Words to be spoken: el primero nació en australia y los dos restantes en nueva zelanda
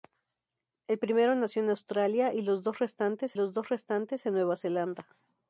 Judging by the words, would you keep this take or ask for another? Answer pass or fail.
fail